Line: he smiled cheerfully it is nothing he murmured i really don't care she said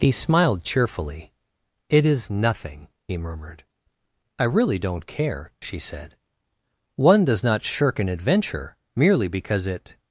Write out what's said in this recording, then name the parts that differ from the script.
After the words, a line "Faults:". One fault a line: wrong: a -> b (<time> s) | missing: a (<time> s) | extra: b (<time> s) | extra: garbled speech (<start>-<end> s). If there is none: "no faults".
he smiled cheerfully it is nothing he murmured i really don't care she said one does not shirk an adventure merely because it
Faults:
extra: one does not shirk an adventure merely because it (7.0 s)